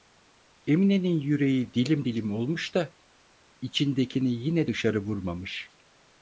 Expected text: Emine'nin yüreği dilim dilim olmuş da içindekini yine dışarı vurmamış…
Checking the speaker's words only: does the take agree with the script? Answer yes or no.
yes